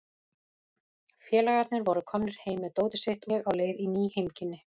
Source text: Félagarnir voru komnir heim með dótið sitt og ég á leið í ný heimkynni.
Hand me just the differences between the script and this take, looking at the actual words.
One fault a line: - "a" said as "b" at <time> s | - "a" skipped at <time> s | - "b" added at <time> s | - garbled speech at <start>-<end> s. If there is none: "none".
- "og" skipped at 3.3 s